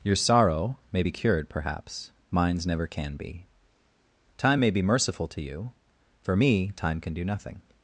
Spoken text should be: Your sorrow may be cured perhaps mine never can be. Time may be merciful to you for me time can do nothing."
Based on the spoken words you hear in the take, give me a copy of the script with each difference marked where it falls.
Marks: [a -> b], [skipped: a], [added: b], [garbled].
Your sorrow may be cured perhaps [mine -> mines] never can be. Time may be merciful to you for me time can do nothing."